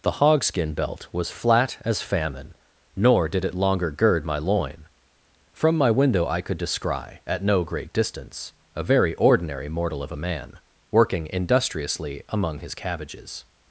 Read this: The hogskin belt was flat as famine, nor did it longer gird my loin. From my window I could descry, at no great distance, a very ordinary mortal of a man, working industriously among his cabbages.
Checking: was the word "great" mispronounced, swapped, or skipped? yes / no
no